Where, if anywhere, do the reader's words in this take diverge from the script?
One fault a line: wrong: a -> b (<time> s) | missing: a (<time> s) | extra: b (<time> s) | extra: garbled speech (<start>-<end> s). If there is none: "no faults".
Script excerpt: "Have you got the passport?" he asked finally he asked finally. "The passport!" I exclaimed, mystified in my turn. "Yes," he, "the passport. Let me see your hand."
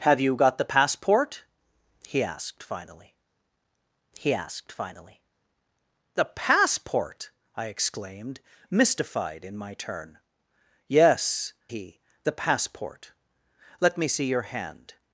no faults